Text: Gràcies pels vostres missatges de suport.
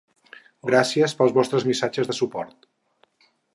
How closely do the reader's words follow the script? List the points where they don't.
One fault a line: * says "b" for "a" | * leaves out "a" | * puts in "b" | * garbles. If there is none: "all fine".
all fine